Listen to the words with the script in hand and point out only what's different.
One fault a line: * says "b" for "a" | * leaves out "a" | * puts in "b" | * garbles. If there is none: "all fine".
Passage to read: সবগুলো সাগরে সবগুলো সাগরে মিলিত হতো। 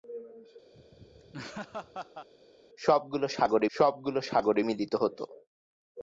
all fine